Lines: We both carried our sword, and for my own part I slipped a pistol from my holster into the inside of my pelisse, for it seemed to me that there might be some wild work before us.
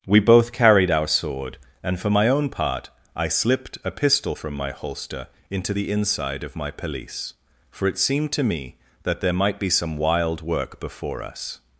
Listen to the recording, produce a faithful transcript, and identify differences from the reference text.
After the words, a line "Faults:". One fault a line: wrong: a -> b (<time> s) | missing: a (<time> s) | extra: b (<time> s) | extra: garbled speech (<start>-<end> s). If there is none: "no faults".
We both carried our sword, and for my own part I slipped a pistol from my holster into the inside of my pelisse, for it seemed to me that there might be some wild work before us.
Faults:
no faults